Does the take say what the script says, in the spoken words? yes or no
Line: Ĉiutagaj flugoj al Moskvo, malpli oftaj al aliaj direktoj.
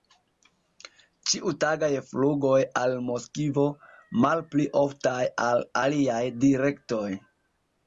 yes